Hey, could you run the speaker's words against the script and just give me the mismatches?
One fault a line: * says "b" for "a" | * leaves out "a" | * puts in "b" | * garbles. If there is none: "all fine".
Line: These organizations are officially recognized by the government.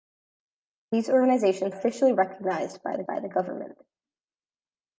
* leaves out "are"
* puts in "by the"